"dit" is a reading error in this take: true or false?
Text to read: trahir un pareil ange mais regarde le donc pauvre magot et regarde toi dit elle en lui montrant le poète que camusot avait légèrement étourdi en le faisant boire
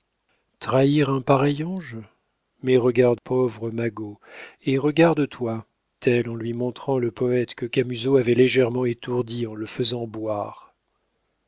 true